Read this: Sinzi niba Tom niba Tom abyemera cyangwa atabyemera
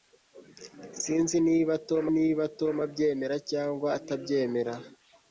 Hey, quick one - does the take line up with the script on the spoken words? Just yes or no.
yes